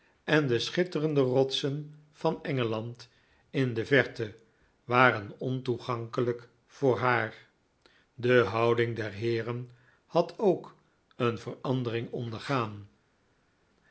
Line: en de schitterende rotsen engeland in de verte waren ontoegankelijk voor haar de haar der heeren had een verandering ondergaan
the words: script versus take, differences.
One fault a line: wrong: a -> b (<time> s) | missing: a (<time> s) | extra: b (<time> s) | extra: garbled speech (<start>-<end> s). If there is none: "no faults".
extra: van (2.1 s)
wrong: haar -> houding (8.4 s)
extra: ook (10.4 s)